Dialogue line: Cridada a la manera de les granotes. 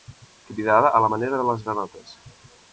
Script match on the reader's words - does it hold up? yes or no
yes